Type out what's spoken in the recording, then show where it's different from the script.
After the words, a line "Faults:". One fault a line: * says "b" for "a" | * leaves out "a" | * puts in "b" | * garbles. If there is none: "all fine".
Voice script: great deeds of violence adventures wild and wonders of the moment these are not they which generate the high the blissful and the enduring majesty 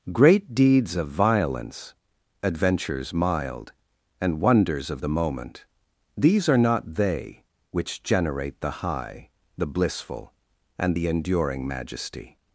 great deeds of violence adventures mild and wonders of the moment these are not they which generate the high the blissful and the enduring majesty
Faults:
* says "mild" for "wild"